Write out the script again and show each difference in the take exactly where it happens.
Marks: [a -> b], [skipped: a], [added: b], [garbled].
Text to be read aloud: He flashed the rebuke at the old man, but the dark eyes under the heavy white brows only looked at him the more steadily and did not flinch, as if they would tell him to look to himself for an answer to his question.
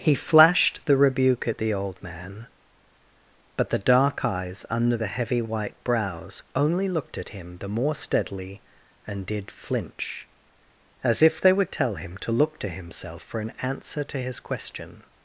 He flashed the rebuke at the old man, but the dark eyes under the heavy white brows only looked at him the more steadily and did [skipped: not] flinch, as if they would tell him to look to himself for an answer to his question.